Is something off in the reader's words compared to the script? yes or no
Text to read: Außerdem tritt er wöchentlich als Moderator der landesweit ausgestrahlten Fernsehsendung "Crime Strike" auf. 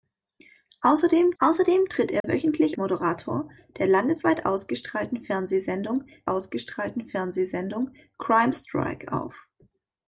yes